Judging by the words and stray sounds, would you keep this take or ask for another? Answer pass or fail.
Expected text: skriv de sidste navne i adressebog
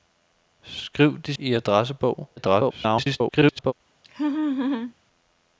fail